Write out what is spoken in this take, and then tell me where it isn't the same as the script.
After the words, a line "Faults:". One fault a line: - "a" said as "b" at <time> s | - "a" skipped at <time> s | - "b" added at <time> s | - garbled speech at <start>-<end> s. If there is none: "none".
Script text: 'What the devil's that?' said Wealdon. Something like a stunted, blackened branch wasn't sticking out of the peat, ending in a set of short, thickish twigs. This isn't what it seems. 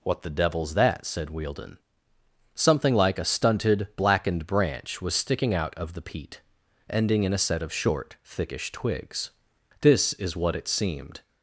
'What the devil's that?' said Wealdon. Something like a stunted, blackened branch was sticking out of the peat, ending in a set of short, thickish twigs. This is what it seemed.
Faults:
- "wasn't" said as "was" at 5.0 s
- "isn't" said as "is" at 10.1 s
- "seems" said as "seemed" at 10.7 s